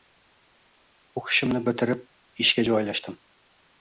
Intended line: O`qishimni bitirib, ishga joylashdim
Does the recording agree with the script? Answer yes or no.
yes